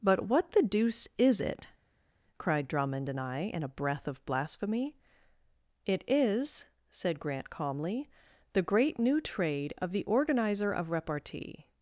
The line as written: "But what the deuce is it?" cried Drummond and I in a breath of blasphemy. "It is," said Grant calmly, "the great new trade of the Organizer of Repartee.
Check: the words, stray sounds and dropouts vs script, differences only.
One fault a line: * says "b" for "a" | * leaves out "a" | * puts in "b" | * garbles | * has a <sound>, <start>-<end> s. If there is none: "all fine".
all fine